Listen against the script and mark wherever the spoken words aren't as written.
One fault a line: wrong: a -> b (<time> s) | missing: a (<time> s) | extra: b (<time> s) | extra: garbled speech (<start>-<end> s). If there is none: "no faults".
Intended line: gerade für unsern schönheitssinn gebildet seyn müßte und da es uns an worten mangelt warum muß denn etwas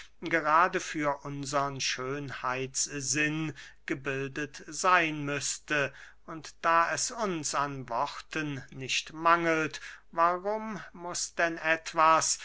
extra: nicht (8.7 s)